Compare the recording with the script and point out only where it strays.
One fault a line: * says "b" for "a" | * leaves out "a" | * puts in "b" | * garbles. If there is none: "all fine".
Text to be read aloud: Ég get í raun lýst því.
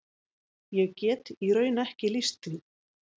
* puts in "ekki"